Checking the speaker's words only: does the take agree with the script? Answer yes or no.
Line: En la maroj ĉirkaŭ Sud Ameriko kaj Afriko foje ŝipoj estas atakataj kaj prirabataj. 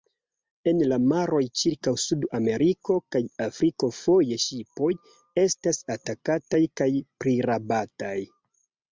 yes